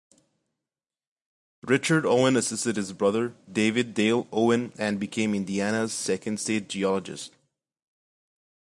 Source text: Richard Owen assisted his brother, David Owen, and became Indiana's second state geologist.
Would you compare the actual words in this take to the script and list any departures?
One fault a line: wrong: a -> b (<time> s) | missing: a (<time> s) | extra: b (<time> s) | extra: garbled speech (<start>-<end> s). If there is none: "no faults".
extra: Dale (3.9 s)